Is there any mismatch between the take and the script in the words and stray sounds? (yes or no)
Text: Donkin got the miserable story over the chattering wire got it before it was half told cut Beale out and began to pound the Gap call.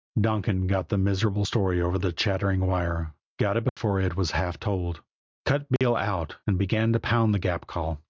yes